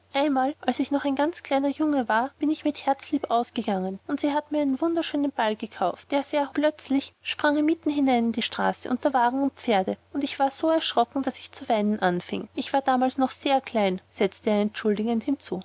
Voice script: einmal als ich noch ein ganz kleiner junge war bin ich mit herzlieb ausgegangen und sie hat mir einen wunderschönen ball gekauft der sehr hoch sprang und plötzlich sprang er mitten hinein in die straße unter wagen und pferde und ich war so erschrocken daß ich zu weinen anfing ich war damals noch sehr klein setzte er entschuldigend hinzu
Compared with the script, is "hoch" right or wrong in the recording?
wrong